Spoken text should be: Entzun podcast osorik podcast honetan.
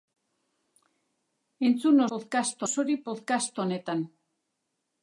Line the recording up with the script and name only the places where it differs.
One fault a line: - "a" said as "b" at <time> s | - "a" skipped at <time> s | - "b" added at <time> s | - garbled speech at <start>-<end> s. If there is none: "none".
none